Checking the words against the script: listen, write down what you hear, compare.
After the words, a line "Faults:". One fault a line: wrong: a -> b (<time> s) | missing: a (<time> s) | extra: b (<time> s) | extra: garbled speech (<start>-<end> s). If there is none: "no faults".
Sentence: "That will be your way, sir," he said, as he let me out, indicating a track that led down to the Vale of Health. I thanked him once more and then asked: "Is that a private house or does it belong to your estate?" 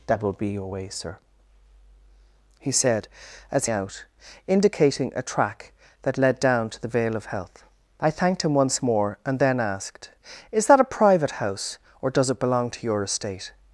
"That will be your way, sir," he said, as out, indicating a track that led down to the Vale of Health. I thanked him once more and then asked: "Is that a private house or does it belong to your estate?"
Faults:
missing: he let me (3.6 s)